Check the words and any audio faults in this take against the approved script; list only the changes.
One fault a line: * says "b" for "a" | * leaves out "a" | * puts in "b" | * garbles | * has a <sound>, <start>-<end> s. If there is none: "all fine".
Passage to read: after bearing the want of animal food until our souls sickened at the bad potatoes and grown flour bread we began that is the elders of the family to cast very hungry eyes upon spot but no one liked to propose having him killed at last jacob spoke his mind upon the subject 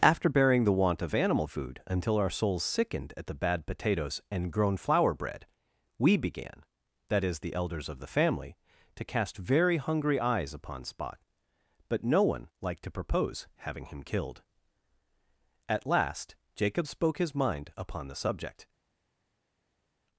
all fine